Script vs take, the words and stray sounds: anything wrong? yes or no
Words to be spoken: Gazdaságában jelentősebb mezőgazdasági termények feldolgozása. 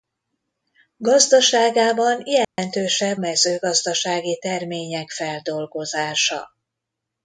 yes